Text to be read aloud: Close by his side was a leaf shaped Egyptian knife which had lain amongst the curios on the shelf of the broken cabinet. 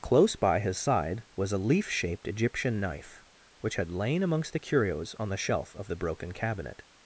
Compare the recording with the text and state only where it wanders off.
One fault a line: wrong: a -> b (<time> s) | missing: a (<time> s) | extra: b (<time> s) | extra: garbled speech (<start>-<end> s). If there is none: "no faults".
no faults